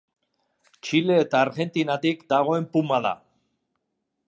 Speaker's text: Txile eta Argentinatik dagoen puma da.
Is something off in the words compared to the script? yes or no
no